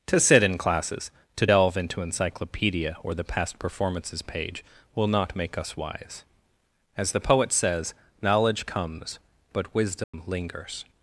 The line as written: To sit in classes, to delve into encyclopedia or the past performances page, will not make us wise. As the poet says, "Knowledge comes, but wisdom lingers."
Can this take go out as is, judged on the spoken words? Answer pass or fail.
pass